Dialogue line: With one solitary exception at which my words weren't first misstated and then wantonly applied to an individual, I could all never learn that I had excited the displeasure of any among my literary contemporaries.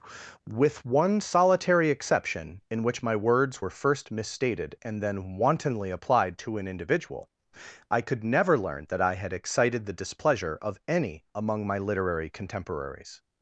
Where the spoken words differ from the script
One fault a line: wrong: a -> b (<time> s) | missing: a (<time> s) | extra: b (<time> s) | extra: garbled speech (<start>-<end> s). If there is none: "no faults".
wrong: at -> in (2.7 s)
wrong: weren't -> were (3.6 s)
missing: all (8.2 s)